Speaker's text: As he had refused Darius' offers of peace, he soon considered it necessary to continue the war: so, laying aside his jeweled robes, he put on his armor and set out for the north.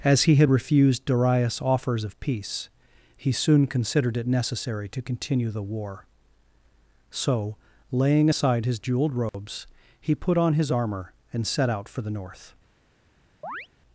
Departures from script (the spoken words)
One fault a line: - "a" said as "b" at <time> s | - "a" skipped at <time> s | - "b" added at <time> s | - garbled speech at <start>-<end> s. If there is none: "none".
none